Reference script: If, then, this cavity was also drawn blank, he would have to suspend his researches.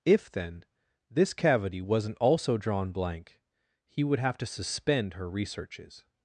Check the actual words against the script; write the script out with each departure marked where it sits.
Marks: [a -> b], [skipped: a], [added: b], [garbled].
If, then, this cavity [was -> wasn't] also drawn blank, he would have to suspend [his -> her] researches.